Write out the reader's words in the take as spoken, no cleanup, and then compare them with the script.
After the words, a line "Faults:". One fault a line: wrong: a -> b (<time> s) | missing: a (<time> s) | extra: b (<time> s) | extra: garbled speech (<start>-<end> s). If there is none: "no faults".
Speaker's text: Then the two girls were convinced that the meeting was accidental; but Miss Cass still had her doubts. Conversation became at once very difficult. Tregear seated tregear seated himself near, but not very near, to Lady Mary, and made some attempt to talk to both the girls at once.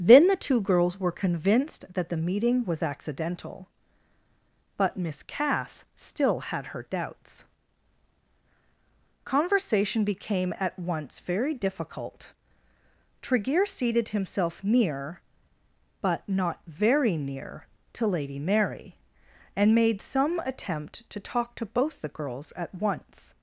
Then the two girls were convinced that the meeting was accidental; but Miss Cass still had her doubts. Conversation became at once very difficult. Tregear seated himself near, but not very near, to Lady Mary, and made some attempt to talk to both the girls at once.
Faults:
missing: tregear seated (14.1 s)